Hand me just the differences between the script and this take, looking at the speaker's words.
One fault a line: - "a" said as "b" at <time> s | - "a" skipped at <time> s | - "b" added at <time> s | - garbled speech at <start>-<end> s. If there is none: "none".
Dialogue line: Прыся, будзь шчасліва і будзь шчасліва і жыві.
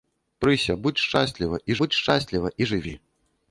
none